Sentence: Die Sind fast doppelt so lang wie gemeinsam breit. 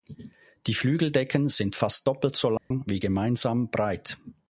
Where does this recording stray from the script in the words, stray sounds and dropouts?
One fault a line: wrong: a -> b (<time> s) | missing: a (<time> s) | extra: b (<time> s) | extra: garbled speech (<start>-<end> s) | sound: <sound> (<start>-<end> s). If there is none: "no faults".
extra: Flügeldecken (0.7 s)
sound: dropout (2.6-2.7 s)